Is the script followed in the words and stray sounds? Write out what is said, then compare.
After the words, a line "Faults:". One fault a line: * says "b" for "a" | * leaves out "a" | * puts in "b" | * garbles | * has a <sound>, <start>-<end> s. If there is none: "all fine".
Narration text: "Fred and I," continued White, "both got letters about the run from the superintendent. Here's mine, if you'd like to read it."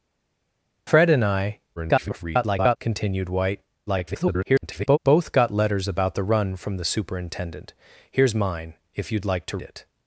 "Fred and I," [garbled] continued White, [garbled] "both got letters about the run from the superintendent. Here's mine, if you'd like to it."
Faults:
* garbles
* garbles
* leaves out "read"